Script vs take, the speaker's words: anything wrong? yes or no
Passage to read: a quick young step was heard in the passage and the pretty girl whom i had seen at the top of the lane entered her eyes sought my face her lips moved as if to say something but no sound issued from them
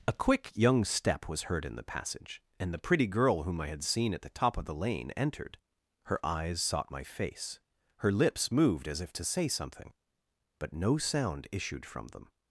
no